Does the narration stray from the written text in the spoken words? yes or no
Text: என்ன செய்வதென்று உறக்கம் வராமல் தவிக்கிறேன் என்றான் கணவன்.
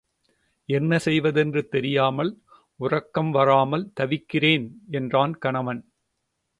yes